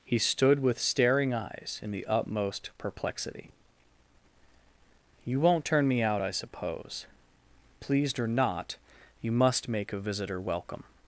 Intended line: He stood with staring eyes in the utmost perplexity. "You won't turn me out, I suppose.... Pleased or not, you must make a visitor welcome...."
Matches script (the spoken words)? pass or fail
pass